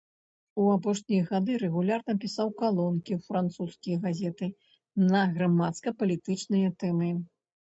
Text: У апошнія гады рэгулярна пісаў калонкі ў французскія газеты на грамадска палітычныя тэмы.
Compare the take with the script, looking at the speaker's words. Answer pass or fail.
pass